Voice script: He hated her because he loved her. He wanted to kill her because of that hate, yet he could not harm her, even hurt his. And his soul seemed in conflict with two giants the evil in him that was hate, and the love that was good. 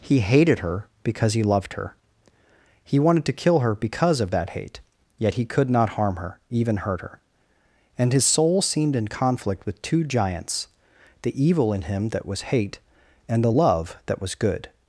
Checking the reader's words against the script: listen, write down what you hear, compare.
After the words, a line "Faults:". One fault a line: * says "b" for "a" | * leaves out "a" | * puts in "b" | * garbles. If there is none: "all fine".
He hated her because he loved her. He wanted to kill her because of that hate, yet he could not harm her, even hurt her. And his soul seemed in conflict with two giants the evil in him that was hate, and the love that was good.
Faults:
* says "her" for "his"